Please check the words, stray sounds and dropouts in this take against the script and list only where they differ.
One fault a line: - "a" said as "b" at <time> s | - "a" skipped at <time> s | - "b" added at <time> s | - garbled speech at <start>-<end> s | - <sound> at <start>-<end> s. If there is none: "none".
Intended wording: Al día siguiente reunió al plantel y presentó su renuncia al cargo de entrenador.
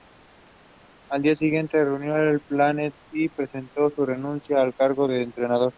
none